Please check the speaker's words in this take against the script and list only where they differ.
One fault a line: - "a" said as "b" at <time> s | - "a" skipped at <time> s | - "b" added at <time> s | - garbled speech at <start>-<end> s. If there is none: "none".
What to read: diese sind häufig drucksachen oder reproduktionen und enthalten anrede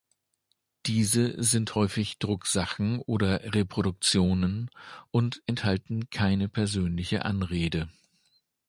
- "keine persönliche" added at 6.1 s